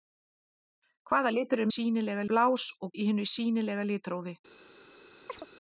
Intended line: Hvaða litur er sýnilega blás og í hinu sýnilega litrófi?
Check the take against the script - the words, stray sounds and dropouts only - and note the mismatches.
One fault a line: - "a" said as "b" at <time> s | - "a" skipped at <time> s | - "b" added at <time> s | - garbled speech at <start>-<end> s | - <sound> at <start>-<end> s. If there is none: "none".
- chirp at 5.3-5.5 s